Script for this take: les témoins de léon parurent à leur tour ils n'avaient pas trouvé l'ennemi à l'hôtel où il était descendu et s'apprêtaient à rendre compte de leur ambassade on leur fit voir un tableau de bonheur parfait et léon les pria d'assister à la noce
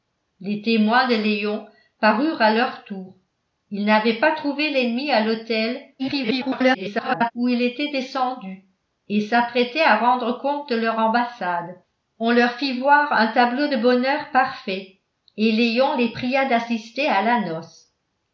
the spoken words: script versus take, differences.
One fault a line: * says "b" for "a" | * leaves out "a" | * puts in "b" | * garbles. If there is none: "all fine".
* garbles